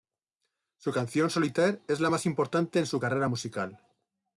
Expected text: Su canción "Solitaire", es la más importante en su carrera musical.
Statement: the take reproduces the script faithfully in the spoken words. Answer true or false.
true